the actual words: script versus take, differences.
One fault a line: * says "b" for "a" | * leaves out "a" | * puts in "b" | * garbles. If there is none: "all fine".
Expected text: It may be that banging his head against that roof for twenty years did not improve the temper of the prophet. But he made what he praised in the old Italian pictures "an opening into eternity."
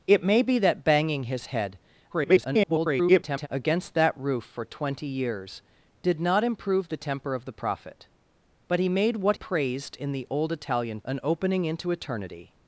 * garbles
* leaves out "he"
* leaves out "pictures"